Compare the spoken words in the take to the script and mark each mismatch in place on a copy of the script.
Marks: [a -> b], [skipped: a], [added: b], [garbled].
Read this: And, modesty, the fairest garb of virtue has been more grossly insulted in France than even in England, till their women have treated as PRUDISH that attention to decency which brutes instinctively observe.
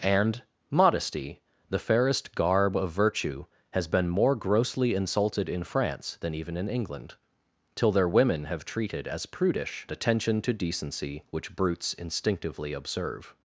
And, modesty, the fairest garb of virtue has been more grossly insulted in France than even in England, till their women have treated as PRUDISH [skipped: that] attention to decency which brutes instinctively observe.